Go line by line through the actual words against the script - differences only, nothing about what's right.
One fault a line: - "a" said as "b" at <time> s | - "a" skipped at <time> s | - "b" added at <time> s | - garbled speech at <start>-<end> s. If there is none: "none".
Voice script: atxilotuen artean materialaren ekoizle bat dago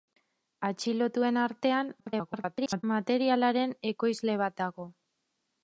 - garbled speech at 2.0-2.8 s